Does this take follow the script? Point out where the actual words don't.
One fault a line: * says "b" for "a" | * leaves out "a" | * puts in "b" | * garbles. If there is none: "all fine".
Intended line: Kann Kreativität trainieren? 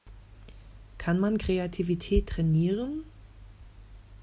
* puts in "man"